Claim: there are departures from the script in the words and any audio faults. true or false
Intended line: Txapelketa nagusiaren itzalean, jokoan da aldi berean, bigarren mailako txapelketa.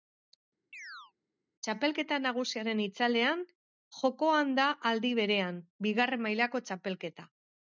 true